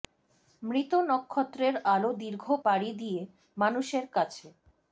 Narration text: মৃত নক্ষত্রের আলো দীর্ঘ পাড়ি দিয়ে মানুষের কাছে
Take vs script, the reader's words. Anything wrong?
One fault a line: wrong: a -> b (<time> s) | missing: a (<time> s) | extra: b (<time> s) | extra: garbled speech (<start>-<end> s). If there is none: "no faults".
no faults